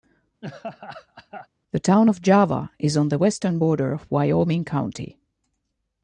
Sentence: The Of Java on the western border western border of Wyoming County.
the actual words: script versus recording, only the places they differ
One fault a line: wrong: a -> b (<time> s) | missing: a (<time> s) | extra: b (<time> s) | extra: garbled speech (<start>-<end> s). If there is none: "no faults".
extra: Town (1.8 s)
extra: is (2.8 s)
missing: western border (3.9 s)